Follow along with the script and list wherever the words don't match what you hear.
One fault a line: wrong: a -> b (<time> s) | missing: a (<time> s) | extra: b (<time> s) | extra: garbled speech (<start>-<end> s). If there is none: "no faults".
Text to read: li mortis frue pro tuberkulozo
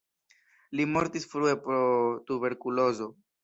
no faults